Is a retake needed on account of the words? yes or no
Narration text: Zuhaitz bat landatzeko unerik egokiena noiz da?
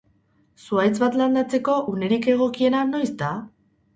no